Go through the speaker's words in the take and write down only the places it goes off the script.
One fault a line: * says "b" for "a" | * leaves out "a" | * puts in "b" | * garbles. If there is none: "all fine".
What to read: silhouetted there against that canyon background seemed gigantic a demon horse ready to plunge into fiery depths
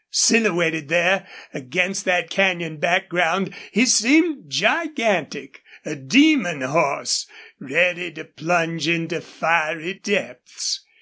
* puts in "he"